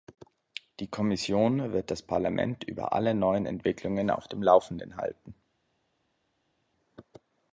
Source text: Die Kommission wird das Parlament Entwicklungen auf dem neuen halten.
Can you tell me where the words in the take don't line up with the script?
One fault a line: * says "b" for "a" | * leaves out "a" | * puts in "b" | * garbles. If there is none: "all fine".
* puts in "über alle neuen"
* says "laufenden" for "neuen"